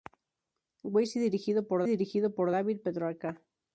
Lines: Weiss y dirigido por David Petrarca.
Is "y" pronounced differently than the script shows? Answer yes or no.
no